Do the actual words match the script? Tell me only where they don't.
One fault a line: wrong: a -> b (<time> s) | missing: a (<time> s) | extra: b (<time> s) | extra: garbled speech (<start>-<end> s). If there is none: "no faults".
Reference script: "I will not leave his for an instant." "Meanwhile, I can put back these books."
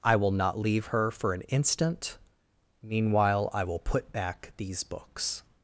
wrong: his -> her (0.9 s)
wrong: can -> will (3.6 s)